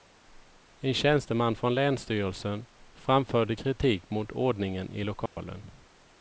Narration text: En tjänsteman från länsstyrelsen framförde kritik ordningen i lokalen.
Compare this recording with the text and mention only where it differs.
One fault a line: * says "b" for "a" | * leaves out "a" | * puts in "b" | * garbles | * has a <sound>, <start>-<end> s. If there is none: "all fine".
* puts in "mot"
* has a dropout, 5.3-5.4 s